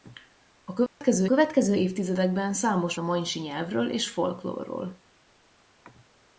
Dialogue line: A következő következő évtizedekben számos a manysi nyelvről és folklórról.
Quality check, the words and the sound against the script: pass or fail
fail